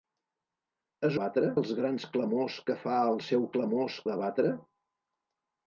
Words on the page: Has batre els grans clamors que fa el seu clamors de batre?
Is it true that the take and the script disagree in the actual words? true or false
false